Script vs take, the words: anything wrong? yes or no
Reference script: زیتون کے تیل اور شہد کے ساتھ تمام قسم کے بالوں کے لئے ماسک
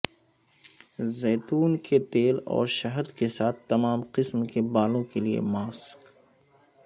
no